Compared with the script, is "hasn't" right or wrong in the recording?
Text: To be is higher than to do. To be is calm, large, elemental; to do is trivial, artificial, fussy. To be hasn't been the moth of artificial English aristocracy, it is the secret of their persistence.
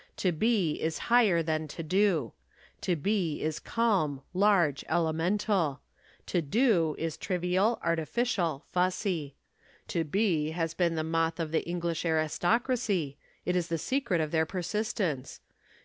wrong